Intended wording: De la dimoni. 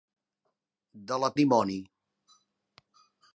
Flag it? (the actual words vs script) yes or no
no